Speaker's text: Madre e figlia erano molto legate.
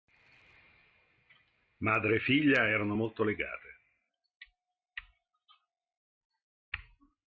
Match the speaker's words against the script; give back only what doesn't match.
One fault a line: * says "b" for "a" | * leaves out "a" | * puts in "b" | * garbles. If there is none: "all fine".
all fine